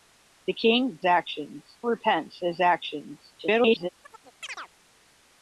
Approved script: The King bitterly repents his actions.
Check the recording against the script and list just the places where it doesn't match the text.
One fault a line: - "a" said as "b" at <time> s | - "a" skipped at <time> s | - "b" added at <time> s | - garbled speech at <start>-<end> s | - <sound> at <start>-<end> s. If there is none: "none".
- "bitterly" said as "actions" at 1.0 s
- garbled speech at 3.4-3.9 s
- chirp at 4.0-4.7 s